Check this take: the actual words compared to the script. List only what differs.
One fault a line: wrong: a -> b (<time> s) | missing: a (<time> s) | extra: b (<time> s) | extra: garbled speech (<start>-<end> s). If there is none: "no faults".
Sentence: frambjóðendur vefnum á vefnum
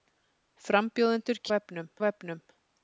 no faults